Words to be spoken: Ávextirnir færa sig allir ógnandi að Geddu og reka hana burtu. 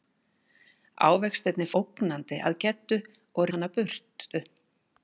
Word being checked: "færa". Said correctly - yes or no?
no